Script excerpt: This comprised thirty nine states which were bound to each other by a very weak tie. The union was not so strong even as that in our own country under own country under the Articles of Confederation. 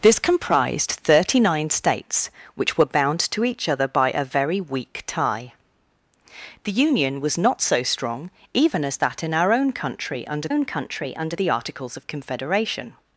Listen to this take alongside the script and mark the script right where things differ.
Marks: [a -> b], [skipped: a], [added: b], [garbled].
This comprised thirty nine states which were bound to each other by a very weak tie. The union was not so strong even as that in our own country under own country under the Articles of Confederation.